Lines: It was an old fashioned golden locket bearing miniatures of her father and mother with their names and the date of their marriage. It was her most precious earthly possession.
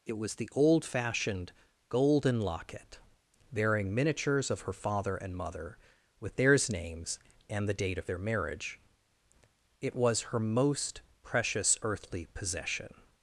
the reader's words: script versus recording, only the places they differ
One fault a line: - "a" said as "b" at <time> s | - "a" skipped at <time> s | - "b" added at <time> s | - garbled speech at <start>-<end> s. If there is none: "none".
- "an" said as "the" at 0.3 s
- "their" said as "theirs" at 6.3 s